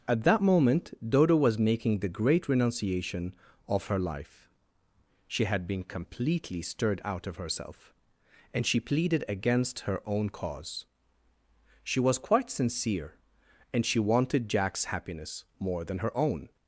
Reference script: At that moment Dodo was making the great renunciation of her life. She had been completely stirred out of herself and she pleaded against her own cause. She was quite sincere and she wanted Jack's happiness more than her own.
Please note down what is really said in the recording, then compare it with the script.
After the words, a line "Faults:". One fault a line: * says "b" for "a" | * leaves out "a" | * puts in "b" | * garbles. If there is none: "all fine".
At that moment Dodo was making the great renunciation of her life. She had been completely stirred out of herself and she pleaded against her own cause. She was quite sincere and she wanted Jack's happiness more than her own.
Faults:
all fine